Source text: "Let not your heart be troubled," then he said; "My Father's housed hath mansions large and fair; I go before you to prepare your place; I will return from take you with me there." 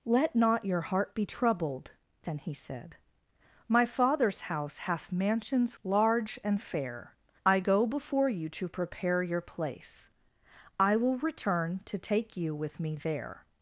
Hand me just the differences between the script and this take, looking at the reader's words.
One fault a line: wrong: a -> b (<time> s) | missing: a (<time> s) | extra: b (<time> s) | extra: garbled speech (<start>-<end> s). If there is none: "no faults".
wrong: housed -> house (4.4 s)
wrong: from -> to (11.9 s)